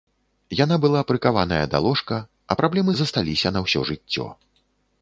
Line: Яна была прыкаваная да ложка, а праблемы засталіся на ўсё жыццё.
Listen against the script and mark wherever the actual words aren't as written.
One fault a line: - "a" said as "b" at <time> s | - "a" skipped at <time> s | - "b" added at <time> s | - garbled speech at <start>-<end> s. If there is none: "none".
none